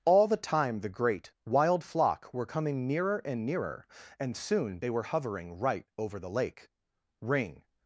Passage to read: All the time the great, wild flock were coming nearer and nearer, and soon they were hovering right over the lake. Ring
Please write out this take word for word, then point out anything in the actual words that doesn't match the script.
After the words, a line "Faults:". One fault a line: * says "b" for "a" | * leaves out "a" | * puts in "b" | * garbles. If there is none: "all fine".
All the time the great, wild flock were coming nearer and nearer, and soon they were hovering right over the lake. Ring
Faults:
all fine